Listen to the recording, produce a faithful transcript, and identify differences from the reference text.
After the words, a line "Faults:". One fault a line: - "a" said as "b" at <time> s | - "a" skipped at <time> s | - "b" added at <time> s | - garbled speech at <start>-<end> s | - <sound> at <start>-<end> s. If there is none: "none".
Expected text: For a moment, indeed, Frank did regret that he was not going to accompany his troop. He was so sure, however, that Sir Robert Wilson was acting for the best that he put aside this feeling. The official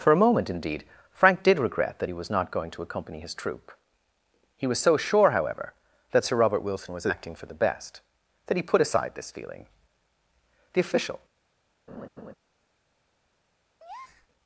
For a moment, indeed, Frank did regret that he was not going to accompany his troop. He was so sure, however, that Sir Robert Wilson was acting for the best that he put aside this feeling. The official
Faults:
- laugh at 11.9-12.3 s
- breath at 13.8-14.3 s